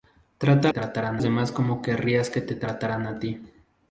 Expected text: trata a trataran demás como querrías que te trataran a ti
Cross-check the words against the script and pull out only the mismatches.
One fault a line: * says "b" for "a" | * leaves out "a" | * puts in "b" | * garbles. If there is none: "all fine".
all fine